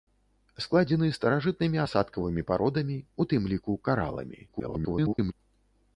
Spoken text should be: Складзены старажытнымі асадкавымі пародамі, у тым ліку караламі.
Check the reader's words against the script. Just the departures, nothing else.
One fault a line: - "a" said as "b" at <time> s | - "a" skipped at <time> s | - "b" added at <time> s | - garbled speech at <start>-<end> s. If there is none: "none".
- garbled speech at 4.5-5.3 s